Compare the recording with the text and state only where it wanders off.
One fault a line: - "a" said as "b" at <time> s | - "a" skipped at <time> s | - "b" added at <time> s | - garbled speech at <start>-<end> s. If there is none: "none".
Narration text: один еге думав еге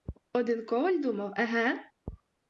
- "еге" said as "коваль" at 0.7 s